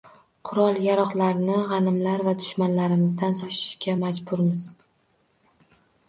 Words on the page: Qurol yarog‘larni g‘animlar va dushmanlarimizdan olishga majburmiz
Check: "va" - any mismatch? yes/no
no